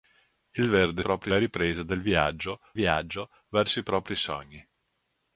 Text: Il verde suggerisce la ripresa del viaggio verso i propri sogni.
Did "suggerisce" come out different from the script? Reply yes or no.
yes